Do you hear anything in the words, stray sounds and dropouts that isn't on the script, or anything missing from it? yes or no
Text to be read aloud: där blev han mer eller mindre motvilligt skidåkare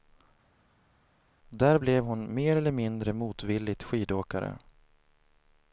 yes